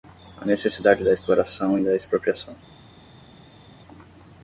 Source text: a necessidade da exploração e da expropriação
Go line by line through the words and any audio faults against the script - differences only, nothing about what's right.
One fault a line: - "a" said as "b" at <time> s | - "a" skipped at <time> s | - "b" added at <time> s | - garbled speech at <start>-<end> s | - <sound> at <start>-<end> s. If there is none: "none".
none